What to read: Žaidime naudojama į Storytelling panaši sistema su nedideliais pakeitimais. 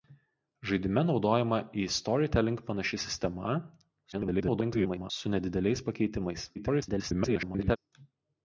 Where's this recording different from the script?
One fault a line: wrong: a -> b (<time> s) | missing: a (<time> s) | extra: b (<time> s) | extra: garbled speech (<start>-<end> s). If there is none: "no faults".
extra: garbled speech (4.1-5.1 s)
extra: garbled speech (6.5-7.8 s)